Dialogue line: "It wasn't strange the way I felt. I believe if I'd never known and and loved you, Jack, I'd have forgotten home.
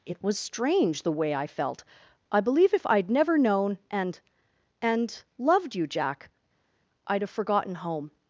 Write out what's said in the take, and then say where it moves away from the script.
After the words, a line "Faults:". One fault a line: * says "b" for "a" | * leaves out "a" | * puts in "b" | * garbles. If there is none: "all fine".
"It was strange the way I felt. I believe if I'd never known and and loved you, Jack, I'd have forgotten home.
Faults:
* says "was" for "wasn't"